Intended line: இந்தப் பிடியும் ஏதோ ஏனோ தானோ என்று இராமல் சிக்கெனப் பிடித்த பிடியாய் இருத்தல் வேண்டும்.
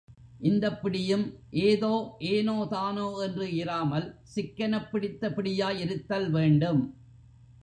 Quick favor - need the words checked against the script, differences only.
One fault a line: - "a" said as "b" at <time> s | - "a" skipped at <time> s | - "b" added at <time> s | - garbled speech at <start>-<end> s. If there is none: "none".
none